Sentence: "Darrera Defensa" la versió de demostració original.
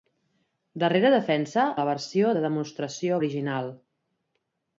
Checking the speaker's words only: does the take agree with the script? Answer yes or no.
yes